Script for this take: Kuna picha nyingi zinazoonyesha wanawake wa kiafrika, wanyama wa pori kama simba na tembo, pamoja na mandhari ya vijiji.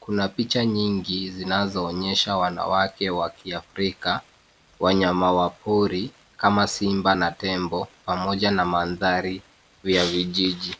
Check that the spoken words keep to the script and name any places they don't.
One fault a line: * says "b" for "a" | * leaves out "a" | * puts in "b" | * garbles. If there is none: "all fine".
all fine